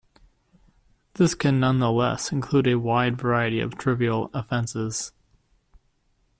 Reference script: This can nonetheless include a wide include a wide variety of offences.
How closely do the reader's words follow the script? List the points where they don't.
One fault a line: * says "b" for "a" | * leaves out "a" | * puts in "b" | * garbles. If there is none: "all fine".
* leaves out "include a wide"
* puts in "trivial"